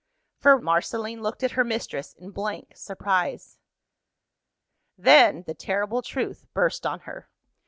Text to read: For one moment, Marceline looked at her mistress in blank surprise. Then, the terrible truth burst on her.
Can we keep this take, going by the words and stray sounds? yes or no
no